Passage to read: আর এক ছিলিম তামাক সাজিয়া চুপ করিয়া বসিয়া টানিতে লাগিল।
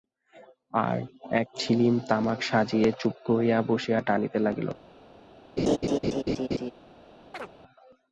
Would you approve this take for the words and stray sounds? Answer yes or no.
no